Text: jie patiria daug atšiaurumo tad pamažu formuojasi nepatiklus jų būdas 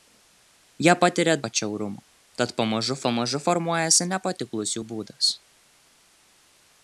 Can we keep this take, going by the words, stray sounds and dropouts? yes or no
no